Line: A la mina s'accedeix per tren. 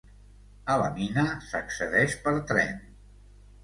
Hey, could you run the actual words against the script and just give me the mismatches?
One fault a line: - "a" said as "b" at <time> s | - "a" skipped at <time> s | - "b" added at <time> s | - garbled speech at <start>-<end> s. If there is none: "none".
none